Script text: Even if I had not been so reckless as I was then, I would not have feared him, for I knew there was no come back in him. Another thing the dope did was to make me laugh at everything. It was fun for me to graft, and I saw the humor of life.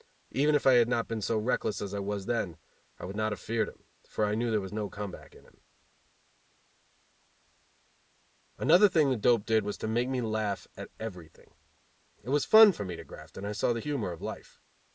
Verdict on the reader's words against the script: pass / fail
pass